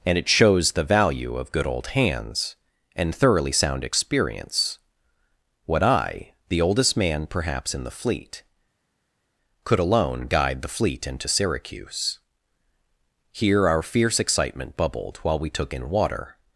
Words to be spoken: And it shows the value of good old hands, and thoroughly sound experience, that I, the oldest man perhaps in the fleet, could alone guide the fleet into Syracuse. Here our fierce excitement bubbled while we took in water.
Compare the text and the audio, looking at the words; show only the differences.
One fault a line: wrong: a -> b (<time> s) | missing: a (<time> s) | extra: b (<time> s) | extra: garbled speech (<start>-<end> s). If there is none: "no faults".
wrong: that -> what (5.7 s)